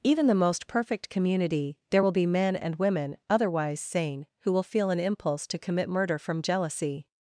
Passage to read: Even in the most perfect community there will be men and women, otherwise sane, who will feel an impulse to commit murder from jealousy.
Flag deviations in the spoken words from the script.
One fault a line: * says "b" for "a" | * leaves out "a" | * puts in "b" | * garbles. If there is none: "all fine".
* leaves out "in"